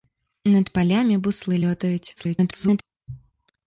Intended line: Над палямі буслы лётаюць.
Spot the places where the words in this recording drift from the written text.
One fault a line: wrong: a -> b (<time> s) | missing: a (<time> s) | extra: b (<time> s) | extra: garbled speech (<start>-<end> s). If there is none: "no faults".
extra: garbled speech (2.2-2.8 s)